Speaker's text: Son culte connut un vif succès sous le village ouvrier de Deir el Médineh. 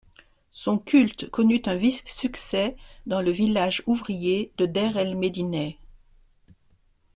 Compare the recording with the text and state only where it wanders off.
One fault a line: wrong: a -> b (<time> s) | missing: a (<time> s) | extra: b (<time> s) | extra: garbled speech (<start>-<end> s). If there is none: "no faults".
wrong: sous -> dans (3.1 s)